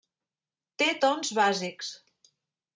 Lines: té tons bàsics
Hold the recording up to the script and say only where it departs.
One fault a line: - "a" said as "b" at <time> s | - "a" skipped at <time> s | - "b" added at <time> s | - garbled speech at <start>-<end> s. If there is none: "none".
none